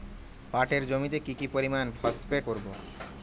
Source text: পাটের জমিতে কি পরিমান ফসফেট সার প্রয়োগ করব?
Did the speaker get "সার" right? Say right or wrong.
wrong